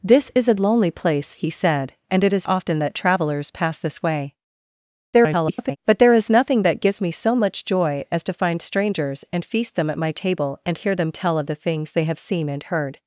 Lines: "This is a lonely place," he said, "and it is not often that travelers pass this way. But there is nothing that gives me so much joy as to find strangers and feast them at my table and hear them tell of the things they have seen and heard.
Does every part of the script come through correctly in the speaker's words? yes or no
no